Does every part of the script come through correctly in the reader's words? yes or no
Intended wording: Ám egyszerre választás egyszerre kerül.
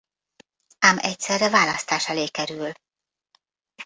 no